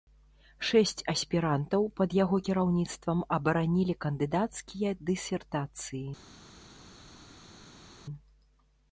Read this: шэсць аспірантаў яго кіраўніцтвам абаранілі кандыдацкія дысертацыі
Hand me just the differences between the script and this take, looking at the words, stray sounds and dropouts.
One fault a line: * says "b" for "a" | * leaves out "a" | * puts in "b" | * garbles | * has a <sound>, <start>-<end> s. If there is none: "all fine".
* puts in "пад"